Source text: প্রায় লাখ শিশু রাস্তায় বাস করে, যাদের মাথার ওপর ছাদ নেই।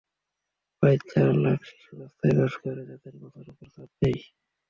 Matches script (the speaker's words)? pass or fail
fail